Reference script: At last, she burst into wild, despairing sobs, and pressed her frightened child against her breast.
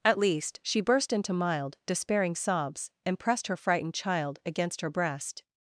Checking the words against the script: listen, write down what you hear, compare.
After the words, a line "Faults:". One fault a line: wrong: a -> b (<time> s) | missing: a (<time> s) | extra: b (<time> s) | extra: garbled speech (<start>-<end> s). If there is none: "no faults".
At least, she burst into mild, despairing sobs, and pressed her frightened child against her breast.
Faults:
wrong: last -> least (0.2 s)
wrong: wild -> mild (1.3 s)